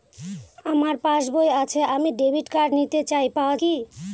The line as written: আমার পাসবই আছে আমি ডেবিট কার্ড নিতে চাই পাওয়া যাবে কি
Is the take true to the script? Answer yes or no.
no